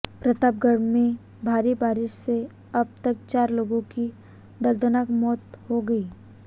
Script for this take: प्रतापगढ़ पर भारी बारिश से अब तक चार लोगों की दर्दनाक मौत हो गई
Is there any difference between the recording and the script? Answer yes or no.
yes